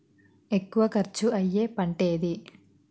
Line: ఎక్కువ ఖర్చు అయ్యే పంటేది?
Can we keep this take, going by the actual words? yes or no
yes